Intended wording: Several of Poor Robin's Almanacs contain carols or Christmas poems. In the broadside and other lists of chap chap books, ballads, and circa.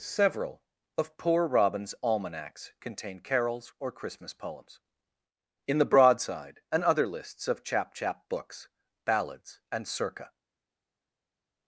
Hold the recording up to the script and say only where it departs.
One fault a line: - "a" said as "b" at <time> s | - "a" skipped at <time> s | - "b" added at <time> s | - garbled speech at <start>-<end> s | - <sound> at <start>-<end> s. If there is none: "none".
none